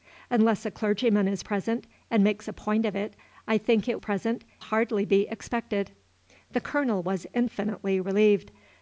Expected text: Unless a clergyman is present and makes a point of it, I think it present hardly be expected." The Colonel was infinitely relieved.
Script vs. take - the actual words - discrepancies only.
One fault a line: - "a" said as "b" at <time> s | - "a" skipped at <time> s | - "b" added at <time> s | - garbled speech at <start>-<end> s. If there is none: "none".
none